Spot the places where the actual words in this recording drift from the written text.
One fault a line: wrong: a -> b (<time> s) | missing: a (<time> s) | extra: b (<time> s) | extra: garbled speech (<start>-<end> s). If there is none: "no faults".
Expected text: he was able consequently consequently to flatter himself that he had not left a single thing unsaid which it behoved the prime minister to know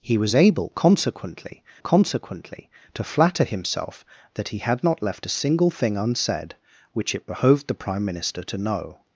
no faults